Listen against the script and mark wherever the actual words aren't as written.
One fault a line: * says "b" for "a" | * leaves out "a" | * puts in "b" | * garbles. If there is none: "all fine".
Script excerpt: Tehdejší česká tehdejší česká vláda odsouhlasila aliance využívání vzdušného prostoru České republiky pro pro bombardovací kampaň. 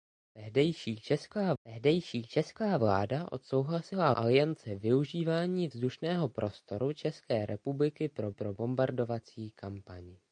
all fine